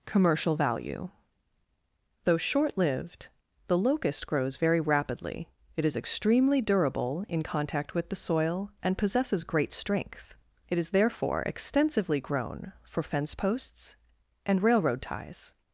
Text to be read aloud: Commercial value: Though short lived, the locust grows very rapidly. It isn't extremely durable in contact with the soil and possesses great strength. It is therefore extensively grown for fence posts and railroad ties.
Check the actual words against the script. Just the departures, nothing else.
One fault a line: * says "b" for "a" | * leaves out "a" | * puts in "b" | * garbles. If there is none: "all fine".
* says "is" for "isn't"